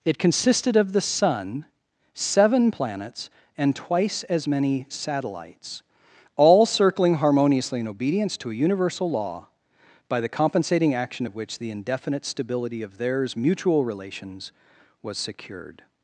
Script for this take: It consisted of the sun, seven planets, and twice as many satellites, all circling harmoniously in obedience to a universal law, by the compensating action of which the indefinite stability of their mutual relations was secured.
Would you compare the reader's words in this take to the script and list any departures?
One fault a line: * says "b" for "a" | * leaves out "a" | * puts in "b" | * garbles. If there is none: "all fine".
* says "theirs" for "their"